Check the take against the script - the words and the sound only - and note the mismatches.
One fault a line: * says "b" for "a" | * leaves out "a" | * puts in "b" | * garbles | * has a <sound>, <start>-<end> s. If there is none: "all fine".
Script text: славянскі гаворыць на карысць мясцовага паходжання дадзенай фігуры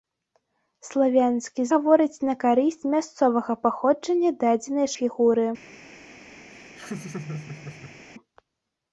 * has a laugh, 6.5-8.0 s